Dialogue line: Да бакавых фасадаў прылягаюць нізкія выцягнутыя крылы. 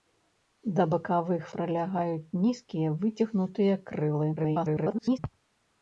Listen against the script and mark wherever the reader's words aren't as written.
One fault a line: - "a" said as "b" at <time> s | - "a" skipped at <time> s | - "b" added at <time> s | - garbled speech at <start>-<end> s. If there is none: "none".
- "фасадаў" skipped at 1.4 s
- garbled speech at 4.4-5.2 s